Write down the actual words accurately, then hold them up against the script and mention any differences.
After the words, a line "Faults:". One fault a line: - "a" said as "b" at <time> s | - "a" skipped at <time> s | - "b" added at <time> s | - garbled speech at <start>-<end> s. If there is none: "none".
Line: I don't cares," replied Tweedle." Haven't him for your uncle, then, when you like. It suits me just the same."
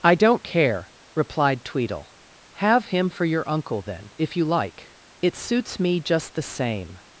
I don't care," replied Tweedle." Have him for your uncle, then, if you like. It suits me just the same."
Faults:
- "cares" said as "care" at 0.4 s
- "Haven't" said as "Have" at 2.5 s
- "when" said as "if" at 4.2 s